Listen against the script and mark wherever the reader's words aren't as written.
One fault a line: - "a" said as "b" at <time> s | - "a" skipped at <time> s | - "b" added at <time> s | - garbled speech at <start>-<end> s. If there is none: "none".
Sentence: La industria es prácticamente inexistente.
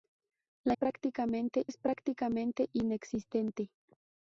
- "industria" said as "prácticamente" at 0.7 s